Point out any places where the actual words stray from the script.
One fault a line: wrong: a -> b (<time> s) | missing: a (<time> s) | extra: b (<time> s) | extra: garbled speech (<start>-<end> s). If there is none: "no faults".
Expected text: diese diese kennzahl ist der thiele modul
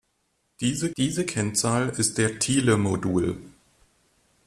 no faults